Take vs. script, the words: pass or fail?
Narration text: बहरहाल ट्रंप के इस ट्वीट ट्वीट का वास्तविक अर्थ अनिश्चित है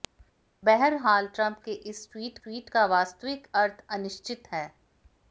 pass